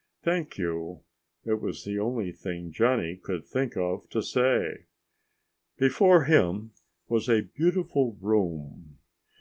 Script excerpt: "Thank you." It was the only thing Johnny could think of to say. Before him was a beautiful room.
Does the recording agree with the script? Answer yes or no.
yes